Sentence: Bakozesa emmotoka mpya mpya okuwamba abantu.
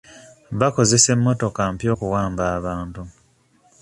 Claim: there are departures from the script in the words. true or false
true